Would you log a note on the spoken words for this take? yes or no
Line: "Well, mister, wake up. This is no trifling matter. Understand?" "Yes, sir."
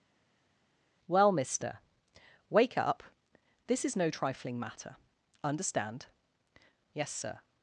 no